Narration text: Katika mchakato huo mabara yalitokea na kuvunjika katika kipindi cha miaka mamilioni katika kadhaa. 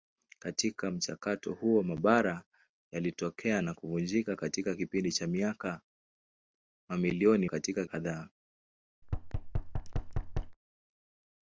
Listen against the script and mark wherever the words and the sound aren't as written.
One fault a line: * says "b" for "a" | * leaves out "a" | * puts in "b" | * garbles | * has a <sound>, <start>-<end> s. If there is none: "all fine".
* has a thud, 9.0-10.6 s